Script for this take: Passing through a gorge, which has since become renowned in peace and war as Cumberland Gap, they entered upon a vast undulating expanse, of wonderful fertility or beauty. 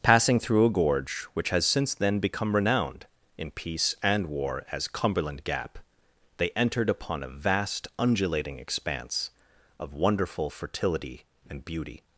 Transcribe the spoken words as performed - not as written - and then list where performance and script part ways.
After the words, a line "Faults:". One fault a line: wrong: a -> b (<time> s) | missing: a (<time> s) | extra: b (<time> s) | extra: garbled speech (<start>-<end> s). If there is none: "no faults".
Passing through a gorge, which has since then become renowned in peace and war as Cumberland Gap, they entered upon a vast undulating expanse, of wonderful fertility and beauty.
Faults:
extra: then (1.9 s)
wrong: or -> and (11.5 s)